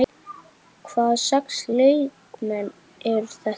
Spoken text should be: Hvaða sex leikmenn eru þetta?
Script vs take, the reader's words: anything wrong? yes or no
no